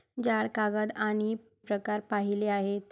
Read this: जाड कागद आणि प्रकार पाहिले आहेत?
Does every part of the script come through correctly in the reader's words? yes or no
yes